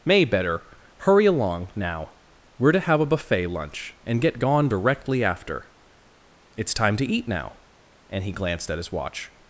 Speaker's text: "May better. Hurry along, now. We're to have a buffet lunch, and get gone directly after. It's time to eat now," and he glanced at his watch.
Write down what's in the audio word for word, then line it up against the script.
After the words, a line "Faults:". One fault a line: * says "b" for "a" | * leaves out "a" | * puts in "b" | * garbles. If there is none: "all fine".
"May better. Hurry along, now. We're to have a buffet lunch, and get gone directly after. It's time to eat now," and he glanced at his watch.
Faults:
all fine